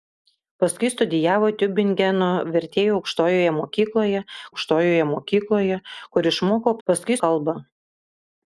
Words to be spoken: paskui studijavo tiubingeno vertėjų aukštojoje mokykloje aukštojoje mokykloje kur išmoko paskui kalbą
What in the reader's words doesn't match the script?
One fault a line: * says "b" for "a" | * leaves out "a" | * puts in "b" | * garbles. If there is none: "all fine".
all fine